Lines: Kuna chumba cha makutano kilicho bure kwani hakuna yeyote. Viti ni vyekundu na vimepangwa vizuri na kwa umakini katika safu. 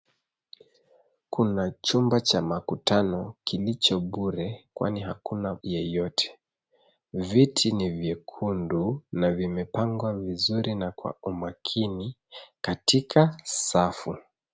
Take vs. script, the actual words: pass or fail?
pass